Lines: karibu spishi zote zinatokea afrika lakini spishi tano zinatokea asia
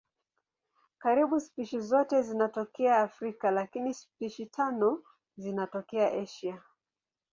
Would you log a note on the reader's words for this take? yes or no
no